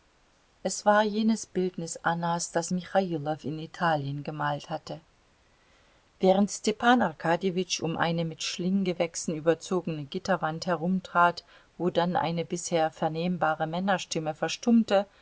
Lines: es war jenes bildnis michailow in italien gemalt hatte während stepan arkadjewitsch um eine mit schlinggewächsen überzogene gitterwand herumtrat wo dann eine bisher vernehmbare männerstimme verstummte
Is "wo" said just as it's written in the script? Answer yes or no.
yes